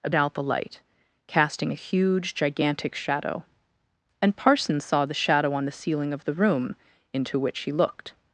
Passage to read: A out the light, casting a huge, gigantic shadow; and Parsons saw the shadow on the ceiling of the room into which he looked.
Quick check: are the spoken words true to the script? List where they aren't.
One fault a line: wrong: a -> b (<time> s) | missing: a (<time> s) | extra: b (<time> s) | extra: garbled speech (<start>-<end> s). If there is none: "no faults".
no faults